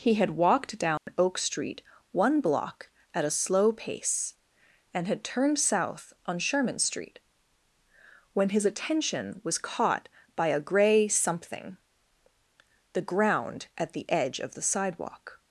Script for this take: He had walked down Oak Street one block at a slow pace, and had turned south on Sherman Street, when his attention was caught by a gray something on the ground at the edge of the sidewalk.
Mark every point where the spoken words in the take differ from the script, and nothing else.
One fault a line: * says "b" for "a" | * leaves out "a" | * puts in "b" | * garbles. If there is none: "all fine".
* leaves out "on"